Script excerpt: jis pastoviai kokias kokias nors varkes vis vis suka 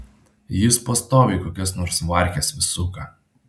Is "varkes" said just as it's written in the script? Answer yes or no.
yes